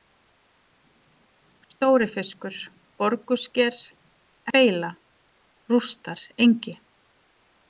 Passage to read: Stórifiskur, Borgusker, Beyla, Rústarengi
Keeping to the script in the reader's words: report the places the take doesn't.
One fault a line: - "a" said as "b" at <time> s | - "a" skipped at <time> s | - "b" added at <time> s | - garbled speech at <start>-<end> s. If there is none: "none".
none